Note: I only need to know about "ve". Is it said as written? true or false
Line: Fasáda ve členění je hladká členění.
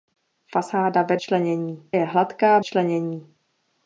true